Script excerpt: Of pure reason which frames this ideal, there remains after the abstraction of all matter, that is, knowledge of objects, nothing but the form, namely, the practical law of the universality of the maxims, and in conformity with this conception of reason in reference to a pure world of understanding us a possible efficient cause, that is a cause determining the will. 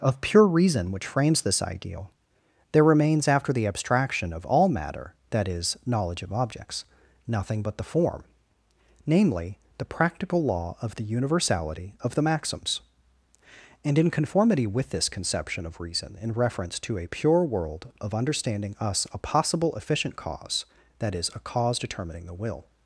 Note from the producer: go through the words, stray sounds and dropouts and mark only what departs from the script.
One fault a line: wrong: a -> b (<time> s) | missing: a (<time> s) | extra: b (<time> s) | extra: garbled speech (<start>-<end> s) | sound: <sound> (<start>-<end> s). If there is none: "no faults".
no faults